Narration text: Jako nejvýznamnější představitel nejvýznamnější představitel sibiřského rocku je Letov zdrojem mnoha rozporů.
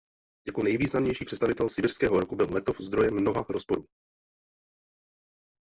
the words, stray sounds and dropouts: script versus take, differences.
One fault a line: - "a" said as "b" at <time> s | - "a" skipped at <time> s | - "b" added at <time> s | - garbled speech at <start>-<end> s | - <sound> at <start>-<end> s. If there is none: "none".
- "nejvýznamnější představitel" skipped at 1.7 s
- "je" said as "byl" at 2.4 s